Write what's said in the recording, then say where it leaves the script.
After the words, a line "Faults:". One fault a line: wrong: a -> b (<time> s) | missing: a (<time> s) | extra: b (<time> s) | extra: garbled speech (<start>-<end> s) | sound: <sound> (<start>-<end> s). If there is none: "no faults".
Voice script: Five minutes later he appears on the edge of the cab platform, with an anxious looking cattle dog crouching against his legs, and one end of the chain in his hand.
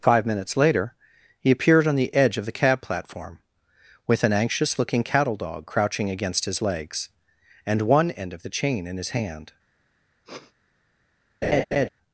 Five minutes later he appeared on the edge of the cab platform, with an anxious looking cattle dog crouching against his legs, and one end of the chain in his hand.
Faults:
wrong: appears -> appeared (1.5 s)
sound: sniff (10.2-10.5 s)
sound: laugh (11.4-11.9 s)